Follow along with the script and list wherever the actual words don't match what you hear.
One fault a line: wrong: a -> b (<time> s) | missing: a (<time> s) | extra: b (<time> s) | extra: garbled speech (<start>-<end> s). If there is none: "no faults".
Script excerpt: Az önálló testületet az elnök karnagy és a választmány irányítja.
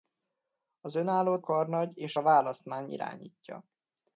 missing: testületet az elnök (1.4 s)